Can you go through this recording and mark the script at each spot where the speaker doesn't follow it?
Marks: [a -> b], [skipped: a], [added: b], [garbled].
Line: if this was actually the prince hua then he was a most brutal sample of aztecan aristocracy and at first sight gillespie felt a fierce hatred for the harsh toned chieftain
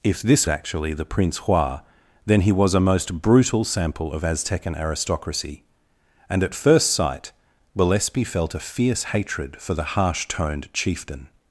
if this [skipped: was] actually the prince hua then he was a most brutal sample of aztecan aristocracy and at first sight gillespie felt a fierce hatred for the harsh toned chieftain